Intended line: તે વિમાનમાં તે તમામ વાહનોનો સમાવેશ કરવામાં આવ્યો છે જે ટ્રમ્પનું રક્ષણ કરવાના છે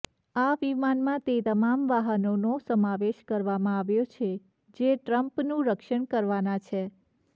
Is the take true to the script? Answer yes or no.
no